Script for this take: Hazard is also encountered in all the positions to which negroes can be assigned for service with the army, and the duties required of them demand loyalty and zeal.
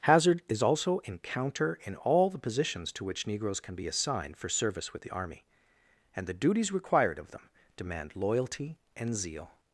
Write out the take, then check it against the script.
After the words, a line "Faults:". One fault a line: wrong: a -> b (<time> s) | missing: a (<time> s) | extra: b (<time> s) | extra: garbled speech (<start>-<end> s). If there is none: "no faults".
Hazard is also encounter in all the positions to which negroes can be assigned for service with the army, and the duties required of them demand loyalty and zeal.
Faults:
wrong: encountered -> encounter (1.0 s)